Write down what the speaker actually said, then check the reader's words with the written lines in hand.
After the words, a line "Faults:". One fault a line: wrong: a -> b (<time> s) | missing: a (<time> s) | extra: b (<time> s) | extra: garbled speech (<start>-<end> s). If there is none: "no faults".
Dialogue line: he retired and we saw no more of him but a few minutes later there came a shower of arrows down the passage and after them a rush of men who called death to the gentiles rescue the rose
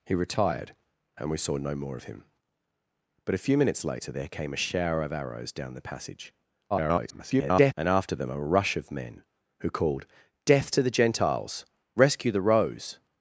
he retired and we saw no more of him but a few minutes later there came a shower of arrows down the passage [garbled] and after them a rush of men who called death to the gentiles rescue the rose
Faults:
extra: garbled speech (6.7-7.7 s)